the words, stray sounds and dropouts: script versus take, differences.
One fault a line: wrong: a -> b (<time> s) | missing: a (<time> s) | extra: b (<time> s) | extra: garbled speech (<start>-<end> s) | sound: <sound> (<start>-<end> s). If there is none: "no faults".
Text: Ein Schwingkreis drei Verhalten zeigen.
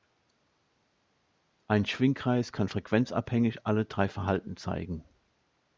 extra: kann frequenzabhängig alle (2.5 s)